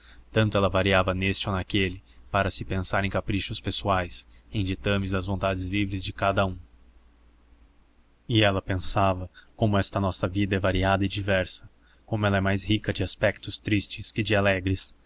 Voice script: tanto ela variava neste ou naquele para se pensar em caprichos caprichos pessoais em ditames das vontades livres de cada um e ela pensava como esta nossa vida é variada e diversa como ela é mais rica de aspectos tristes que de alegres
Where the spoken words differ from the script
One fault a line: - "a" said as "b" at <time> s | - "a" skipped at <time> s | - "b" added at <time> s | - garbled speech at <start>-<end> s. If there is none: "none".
- "caprichos" skipped at 3.6 s